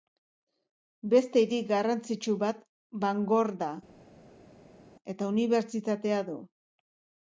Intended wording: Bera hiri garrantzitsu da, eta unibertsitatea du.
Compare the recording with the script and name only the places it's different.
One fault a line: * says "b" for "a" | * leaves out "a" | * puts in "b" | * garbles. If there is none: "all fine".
* says "Beste" for "Bera"
* puts in "bat Bangor"